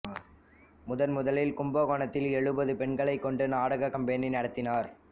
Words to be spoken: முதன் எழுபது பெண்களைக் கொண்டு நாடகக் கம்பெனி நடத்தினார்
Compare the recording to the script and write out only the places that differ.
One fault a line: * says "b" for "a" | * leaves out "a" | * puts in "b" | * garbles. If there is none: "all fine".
* puts in "முதலில் கும்பகோணத்தில்"